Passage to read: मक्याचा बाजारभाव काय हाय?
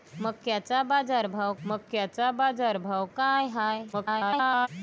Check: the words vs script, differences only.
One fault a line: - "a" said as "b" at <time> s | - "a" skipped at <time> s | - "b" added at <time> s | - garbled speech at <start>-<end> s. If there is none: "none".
- "मक्याचा बाजारभाव" added at 1.7 s
- garbled speech at 3.9-4.7 s